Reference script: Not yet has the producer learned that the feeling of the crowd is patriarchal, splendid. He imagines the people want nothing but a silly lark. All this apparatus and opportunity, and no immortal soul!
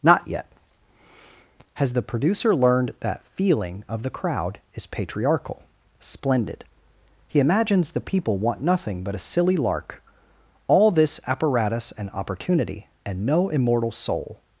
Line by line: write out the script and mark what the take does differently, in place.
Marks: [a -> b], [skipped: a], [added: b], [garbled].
Not yet has the producer learned that [skipped: the] feeling of the crowd is patriarchal, splendid. He imagines the people want nothing but a silly lark. All this apparatus and opportunity, and no immortal soul!